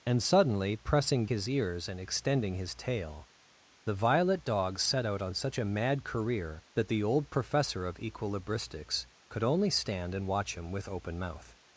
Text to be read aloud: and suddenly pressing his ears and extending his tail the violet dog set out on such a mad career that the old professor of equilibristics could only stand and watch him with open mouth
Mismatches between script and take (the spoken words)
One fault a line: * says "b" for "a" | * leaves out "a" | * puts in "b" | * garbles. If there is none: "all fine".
all fine